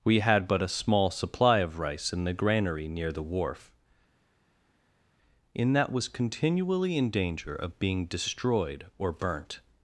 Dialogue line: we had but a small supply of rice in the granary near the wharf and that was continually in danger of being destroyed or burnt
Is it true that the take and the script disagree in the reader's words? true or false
true